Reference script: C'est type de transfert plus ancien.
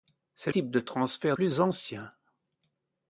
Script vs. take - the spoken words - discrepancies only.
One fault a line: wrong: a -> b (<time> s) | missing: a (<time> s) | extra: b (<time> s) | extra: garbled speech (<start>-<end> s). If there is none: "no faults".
no faults